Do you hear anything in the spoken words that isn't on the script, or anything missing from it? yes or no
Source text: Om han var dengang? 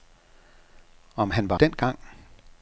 no